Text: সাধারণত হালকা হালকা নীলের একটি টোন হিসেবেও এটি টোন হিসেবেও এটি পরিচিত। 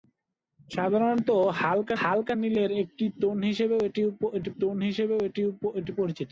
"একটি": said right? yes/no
yes